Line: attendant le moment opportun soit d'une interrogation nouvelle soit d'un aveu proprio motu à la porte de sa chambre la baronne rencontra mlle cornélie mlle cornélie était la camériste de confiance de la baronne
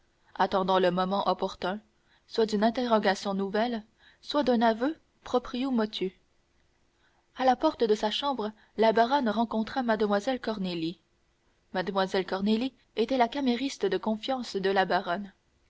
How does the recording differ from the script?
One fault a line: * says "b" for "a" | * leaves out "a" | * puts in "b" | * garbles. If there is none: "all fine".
all fine